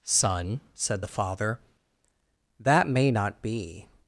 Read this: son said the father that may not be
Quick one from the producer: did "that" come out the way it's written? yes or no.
yes